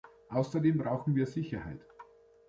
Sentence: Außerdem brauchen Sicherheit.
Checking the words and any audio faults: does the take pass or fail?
fail